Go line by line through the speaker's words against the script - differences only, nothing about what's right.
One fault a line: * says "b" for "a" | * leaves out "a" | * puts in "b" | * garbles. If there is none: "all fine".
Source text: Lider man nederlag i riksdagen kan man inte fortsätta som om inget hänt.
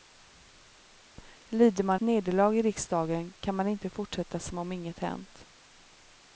all fine